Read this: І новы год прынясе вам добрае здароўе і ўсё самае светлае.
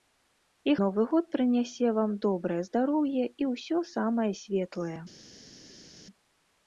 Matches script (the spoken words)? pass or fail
pass